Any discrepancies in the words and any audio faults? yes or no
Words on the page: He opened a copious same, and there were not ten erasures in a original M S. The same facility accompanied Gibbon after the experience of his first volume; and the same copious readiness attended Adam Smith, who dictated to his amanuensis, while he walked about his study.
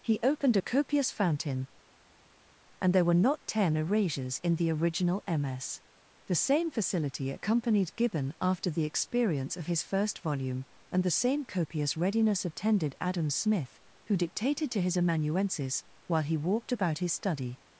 yes